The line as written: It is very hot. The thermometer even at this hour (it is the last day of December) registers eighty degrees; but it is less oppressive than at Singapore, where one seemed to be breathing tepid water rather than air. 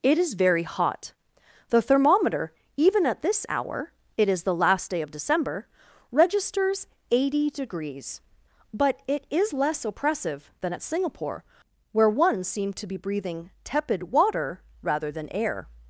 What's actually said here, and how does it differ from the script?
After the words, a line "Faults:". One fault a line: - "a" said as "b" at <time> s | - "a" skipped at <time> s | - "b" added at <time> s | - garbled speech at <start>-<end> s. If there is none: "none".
It is very hot. The thermometer even at this hour (it is the last day of December) registers eighty degrees; but it is less oppressive than at Singapore, where one seemed to be breathing tepid water rather than air.
Faults:
none